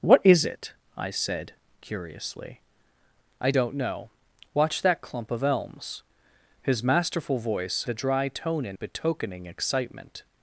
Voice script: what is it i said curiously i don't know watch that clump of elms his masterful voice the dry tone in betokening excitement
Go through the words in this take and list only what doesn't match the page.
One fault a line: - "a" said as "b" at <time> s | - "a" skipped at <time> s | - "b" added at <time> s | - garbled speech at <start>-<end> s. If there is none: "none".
none